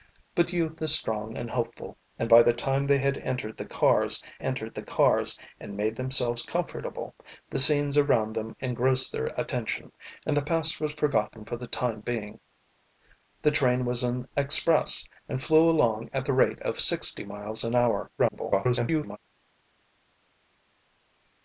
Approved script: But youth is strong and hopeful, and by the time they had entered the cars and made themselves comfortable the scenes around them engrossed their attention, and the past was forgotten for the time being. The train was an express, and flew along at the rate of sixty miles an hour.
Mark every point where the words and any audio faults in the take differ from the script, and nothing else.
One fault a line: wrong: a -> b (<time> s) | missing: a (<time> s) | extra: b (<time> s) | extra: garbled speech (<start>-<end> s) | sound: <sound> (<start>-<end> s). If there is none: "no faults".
extra: entered the cars (4.4 s)
extra: garbled speech (18.2-19.2 s)